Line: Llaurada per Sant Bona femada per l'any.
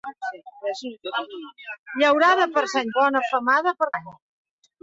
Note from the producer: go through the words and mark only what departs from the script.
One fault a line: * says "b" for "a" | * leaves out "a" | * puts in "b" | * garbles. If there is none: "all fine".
all fine